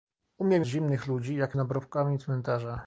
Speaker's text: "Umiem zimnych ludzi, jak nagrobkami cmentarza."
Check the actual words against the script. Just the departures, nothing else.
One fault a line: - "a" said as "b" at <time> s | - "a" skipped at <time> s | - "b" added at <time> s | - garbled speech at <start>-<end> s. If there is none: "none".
none